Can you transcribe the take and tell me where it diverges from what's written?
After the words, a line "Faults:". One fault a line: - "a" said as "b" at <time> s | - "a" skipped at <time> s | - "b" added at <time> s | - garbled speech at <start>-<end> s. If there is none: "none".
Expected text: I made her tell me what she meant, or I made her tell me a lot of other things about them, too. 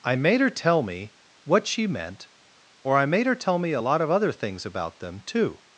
I made her tell me what she meant, or I made her tell me a lot of other things about them, too.
Faults:
none